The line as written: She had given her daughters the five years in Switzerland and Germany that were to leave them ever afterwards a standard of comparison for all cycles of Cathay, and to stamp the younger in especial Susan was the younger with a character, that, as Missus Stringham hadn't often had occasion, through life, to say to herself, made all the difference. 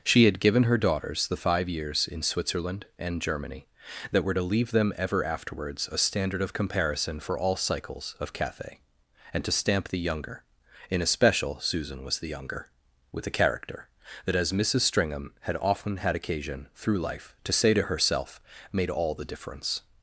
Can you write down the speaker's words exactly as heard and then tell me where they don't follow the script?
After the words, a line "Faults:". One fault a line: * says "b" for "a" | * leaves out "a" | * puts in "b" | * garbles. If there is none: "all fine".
She had given her daughters the five years in Switzerland and Germany that were to leave them ever afterwards a standard of comparison for all cycles of Cathay, and to stamp the younger in especial Susan was the younger with a character, that, as Missus Stringham had often had occasion, through life, to say to herself, made all the difference.
Faults:
* says "had" for "hadn't"